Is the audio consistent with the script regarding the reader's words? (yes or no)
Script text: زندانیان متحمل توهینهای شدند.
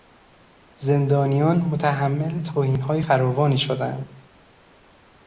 no